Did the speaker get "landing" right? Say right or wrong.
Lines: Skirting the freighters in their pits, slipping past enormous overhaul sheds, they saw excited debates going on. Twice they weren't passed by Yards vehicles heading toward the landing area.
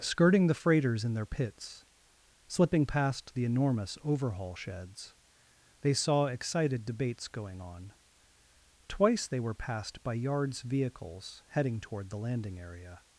right